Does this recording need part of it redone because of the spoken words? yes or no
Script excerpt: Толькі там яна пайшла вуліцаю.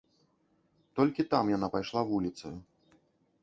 no